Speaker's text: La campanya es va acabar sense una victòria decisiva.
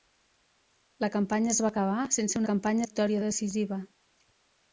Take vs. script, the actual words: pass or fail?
fail